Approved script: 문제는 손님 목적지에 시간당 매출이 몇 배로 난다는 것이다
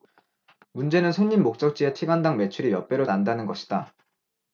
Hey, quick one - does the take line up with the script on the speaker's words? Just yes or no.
yes